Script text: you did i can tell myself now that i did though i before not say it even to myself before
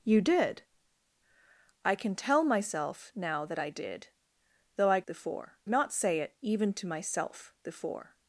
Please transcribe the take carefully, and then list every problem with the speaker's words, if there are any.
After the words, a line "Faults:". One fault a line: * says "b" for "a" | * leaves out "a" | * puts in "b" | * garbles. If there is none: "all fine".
you did i can tell myself now that i did though i before not say it even to myself before
Faults:
all fine